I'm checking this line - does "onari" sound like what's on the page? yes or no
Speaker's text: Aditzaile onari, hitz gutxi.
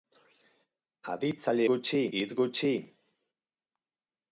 no